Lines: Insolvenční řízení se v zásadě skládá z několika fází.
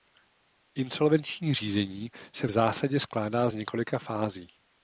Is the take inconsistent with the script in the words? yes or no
no